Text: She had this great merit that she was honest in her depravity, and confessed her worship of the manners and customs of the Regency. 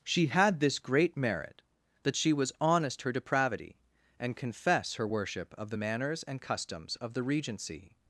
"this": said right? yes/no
yes